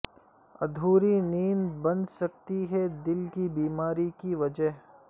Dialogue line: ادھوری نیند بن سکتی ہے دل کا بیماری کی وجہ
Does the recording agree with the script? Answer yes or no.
no